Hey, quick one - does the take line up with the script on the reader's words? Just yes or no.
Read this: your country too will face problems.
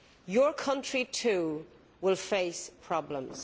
yes